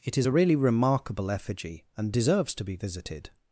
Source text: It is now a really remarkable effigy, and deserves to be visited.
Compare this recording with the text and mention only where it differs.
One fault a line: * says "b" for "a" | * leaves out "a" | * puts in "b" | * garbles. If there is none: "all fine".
* leaves out "now"